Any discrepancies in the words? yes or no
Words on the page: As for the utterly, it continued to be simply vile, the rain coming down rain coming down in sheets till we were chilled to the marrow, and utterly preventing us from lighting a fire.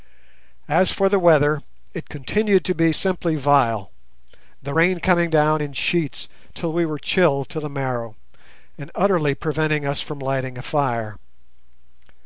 yes